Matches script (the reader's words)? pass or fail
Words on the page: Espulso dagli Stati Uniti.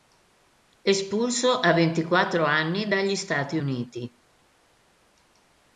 fail